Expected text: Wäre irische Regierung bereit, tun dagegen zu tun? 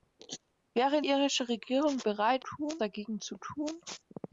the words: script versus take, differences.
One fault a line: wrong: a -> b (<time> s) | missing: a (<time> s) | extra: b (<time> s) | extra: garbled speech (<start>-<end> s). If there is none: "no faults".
no faults